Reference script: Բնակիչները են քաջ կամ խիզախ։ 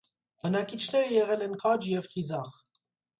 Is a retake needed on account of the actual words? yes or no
yes